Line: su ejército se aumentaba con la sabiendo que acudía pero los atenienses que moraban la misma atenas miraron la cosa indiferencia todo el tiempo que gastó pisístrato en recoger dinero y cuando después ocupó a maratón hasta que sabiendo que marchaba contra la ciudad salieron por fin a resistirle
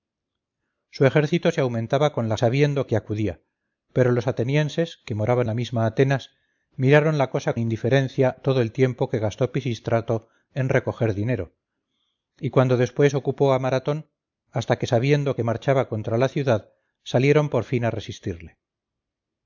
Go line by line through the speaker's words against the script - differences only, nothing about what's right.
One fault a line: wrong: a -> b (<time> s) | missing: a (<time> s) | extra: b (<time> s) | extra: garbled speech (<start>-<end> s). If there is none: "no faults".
no faults